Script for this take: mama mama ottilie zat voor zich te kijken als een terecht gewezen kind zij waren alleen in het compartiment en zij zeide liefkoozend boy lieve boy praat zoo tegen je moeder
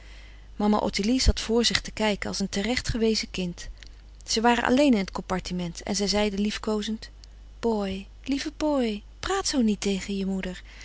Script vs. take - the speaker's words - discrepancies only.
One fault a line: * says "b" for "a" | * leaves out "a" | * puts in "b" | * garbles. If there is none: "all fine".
* leaves out "mama"
* puts in "niet"